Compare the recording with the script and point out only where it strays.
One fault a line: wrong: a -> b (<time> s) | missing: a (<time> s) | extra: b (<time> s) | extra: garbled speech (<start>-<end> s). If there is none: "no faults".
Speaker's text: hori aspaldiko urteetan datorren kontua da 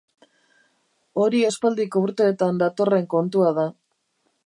no faults